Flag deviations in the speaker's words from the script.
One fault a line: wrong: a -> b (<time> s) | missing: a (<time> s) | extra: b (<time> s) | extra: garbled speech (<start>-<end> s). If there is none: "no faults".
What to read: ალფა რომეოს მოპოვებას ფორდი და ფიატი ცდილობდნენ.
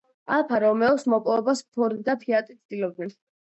no faults